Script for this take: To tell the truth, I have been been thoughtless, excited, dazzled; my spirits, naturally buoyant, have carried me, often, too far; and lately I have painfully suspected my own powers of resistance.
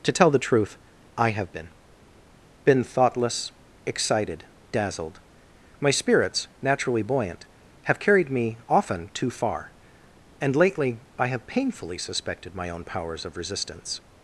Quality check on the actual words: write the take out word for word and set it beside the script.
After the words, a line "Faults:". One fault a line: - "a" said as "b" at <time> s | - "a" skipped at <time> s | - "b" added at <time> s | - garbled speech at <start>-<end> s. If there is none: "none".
To tell the truth, I have been been thoughtless, excited, dazzled; my spirits, naturally buoyant, have carried me, often, too far; and lately I have painfully suspected my own powers of resistance.
Faults:
none